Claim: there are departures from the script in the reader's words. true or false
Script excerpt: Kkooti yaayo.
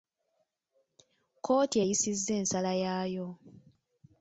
true